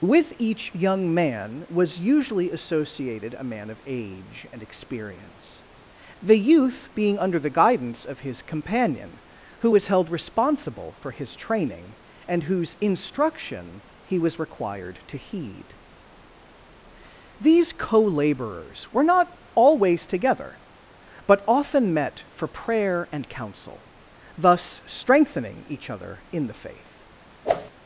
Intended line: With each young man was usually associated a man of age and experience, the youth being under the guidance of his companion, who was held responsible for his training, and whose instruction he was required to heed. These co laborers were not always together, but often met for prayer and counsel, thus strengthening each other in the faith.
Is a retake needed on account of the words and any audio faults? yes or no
yes